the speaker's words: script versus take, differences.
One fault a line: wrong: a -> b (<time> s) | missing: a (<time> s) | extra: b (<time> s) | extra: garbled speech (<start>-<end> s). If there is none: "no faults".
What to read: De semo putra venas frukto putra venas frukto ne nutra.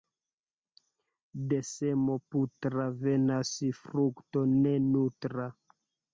missing: putra venas frukto (4.5 s)